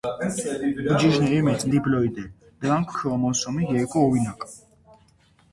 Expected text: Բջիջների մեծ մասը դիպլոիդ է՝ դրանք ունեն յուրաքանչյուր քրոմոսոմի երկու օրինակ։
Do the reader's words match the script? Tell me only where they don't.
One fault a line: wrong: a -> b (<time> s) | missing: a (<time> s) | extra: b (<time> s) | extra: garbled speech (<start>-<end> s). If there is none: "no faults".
missing: մասը (1.6 s)
missing: ունեն յուրաքանչյուր (2.9 s)